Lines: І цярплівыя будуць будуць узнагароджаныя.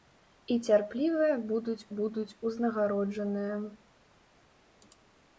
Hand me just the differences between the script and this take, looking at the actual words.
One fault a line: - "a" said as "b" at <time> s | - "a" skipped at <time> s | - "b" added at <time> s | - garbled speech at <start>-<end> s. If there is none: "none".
none